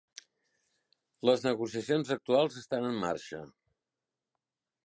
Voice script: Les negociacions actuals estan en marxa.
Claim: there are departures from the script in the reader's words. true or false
false